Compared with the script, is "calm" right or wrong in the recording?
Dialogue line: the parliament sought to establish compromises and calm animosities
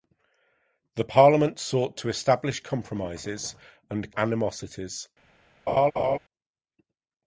wrong